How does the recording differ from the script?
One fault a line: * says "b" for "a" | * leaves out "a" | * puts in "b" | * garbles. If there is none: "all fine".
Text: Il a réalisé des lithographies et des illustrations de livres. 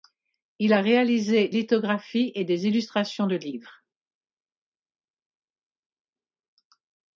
* leaves out "des"